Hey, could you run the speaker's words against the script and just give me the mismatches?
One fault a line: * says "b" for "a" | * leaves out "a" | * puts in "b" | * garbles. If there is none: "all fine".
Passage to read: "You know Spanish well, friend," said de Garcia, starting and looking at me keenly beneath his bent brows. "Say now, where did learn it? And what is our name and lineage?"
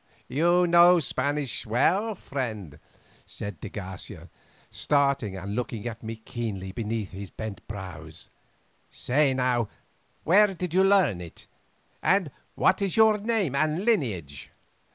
* puts in "you"
* says "your" for "our"